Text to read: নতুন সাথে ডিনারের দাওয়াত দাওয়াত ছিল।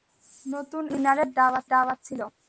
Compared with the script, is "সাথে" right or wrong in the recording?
right